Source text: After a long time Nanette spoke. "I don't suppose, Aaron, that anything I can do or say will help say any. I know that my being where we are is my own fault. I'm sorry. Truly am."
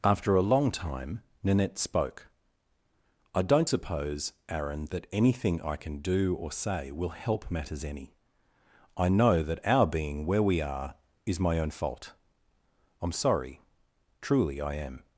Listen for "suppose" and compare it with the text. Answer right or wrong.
right